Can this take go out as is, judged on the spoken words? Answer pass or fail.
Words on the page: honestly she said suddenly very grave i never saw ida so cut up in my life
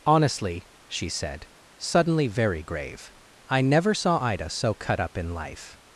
fail